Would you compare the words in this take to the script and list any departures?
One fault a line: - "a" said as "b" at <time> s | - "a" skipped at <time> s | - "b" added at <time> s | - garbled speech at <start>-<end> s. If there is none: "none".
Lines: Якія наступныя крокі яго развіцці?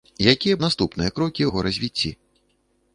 none